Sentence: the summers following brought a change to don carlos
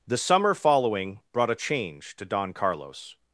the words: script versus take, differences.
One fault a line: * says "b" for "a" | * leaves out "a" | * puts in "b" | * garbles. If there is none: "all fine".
* says "summer" for "summers"